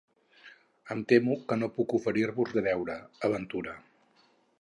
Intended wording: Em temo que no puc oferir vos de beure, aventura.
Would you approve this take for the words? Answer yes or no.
yes